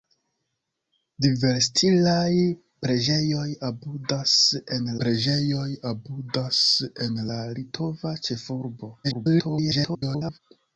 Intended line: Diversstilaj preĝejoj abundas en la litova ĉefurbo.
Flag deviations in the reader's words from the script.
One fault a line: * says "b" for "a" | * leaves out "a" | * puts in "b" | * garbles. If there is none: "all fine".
* puts in "preĝejoj abundas en"
* garbles